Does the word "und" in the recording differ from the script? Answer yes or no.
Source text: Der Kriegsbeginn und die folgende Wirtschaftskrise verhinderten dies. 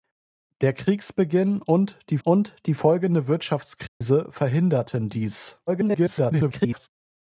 no